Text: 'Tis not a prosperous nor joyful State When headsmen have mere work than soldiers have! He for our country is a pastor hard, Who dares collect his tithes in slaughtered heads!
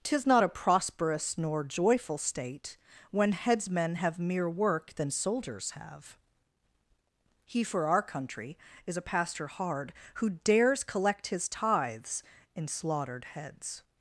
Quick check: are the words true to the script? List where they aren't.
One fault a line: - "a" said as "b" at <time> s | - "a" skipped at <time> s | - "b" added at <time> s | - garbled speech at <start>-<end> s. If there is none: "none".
none